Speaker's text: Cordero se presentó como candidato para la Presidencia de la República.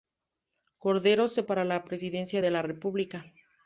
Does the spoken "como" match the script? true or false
false